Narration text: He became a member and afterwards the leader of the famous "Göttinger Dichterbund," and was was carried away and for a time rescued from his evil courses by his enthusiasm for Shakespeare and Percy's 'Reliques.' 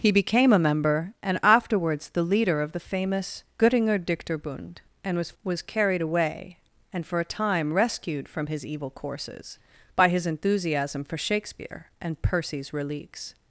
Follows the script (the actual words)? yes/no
yes